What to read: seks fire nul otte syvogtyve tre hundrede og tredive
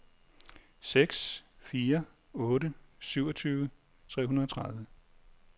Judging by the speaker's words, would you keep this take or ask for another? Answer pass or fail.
fail